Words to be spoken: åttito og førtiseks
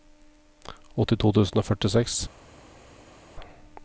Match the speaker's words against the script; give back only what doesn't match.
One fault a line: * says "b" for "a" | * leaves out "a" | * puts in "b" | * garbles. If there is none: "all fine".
* puts in "tusen"